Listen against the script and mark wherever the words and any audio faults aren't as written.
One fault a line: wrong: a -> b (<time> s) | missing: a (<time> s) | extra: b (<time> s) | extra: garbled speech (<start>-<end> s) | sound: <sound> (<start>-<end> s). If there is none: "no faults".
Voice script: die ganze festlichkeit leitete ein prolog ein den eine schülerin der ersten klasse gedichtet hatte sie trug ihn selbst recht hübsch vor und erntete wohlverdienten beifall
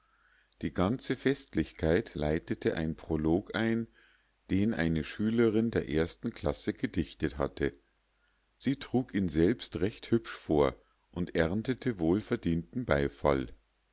no faults